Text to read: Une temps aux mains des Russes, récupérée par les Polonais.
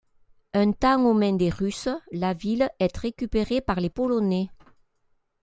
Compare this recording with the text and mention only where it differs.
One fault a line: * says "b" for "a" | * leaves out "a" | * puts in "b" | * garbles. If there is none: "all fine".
* says "Un" for "Une"
* puts in "la ville est"